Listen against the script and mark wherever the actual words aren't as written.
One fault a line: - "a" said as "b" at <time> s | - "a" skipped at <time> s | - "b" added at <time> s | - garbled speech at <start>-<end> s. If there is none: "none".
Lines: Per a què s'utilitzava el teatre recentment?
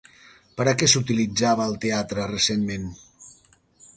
none